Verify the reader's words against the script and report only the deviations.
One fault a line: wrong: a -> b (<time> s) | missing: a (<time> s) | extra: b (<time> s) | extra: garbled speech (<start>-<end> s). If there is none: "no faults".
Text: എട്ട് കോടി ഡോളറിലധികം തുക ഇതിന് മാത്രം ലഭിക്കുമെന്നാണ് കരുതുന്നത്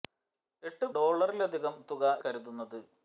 missing: കോടി (0.9 s)
missing: ഇതിന് മാത്രം ലഭിക്കുമെന്നാണ് (2.0 s)